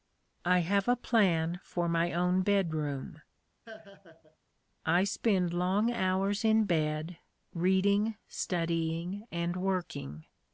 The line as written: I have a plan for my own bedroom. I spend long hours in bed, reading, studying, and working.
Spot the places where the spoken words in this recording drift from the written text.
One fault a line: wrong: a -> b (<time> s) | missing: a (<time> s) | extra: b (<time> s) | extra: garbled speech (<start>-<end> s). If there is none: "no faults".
no faults